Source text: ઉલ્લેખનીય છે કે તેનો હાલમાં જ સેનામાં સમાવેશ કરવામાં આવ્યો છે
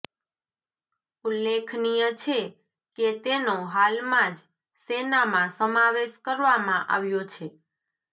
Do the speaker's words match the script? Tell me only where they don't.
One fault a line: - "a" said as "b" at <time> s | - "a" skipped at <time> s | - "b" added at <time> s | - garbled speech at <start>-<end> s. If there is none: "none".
none